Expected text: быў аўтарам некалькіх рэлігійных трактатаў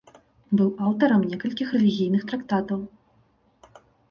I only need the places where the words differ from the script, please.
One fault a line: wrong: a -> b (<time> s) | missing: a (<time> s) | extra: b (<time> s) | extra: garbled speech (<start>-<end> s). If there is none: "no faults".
no faults